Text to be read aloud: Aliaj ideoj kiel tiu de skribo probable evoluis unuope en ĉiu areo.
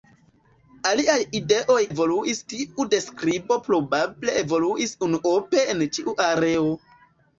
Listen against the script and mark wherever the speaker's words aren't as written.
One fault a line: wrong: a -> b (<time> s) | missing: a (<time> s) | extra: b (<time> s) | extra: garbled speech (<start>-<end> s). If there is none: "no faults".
wrong: kiel -> evoluis (1.9 s)